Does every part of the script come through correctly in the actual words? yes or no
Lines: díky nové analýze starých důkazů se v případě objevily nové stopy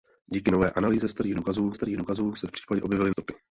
no